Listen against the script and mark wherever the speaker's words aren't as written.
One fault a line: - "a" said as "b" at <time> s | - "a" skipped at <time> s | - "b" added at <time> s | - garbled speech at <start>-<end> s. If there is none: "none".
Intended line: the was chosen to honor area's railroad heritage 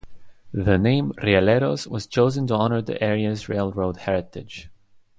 - "name rieleros" added at 0.8 s
- "the" added at 2.8 s